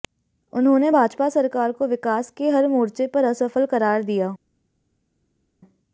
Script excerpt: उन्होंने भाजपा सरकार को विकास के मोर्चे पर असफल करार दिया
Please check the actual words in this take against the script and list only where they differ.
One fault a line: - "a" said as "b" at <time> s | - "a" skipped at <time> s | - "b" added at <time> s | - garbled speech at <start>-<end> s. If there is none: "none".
- "हर" added at 2.5 s